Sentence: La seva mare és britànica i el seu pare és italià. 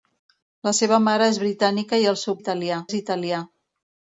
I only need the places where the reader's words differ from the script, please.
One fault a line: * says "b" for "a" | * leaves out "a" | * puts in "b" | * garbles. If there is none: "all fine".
* says "italià" for "pare"